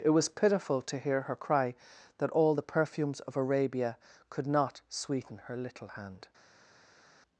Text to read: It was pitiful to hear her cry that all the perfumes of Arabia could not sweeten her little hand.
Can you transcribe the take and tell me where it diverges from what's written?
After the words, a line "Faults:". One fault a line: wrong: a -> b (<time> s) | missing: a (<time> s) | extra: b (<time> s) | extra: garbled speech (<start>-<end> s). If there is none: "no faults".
It was pitiful to hear her cry that all the perfumes of Arabia could not sweeten her little hand.
Faults:
no faults